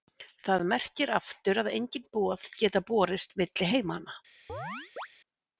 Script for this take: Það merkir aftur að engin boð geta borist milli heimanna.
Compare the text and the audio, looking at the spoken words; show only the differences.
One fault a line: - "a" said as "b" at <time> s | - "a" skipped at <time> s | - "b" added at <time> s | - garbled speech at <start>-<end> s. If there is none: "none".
none